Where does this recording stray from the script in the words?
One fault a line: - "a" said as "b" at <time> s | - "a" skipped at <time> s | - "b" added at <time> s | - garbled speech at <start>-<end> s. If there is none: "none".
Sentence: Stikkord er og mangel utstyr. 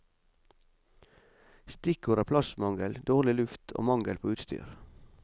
- "plassmangel dårlig luft" added at 2.3 s
- "på" added at 4.2 s